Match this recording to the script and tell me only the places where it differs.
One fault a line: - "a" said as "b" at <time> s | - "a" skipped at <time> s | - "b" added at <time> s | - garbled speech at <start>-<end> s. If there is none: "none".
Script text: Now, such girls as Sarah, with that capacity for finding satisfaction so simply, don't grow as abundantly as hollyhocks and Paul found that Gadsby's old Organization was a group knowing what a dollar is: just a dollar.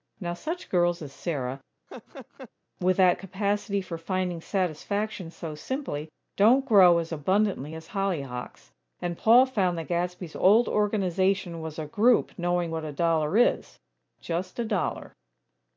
none